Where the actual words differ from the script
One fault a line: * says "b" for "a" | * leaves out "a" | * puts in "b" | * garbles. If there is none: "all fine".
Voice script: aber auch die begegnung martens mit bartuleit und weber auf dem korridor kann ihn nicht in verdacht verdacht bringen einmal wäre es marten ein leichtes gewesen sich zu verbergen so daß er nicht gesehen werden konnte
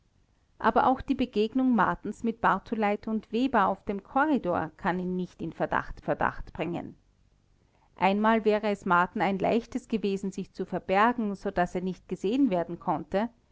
all fine